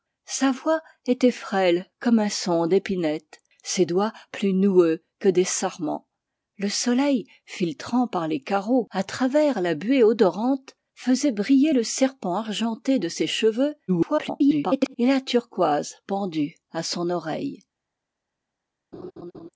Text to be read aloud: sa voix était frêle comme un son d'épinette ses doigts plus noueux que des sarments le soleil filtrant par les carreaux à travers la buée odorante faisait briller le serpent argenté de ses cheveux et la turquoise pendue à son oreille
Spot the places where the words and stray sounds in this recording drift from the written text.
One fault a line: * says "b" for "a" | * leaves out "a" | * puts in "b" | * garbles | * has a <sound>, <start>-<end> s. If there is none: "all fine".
* garbles
* has a laugh, 18.9-19.5 s